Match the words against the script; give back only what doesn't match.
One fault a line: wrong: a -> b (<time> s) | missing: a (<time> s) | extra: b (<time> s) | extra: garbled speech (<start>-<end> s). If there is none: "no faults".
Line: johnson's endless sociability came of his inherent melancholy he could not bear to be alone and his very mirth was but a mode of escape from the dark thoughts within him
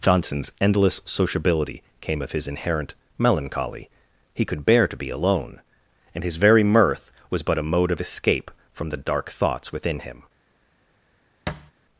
missing: not (4.7 s)